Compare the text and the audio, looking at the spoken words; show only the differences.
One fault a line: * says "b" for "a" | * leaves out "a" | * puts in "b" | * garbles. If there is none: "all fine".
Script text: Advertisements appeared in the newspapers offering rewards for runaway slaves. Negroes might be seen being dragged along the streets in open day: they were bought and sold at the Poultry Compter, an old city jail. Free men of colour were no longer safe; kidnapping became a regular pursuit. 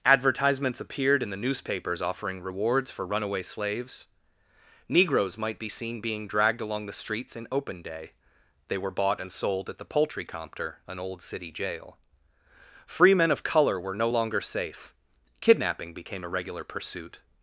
all fine